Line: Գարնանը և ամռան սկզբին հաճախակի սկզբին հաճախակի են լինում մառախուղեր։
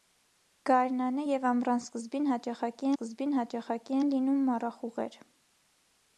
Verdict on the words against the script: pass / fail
pass